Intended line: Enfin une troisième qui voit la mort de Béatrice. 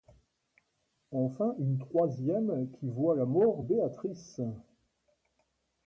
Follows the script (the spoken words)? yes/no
no